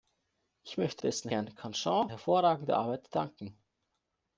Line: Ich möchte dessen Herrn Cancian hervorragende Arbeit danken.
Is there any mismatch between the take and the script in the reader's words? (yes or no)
no